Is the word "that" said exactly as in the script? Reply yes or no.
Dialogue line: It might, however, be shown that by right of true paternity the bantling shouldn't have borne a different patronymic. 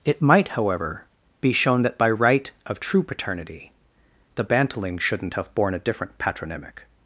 yes